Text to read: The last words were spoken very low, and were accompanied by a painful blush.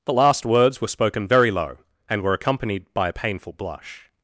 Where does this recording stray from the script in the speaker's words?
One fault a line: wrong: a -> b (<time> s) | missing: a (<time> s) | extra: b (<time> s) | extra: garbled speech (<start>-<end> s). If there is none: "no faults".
no faults